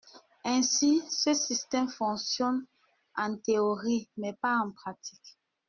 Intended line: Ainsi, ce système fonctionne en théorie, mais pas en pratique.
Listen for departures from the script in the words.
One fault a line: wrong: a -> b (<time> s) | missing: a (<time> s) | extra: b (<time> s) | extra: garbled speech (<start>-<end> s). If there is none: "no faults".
no faults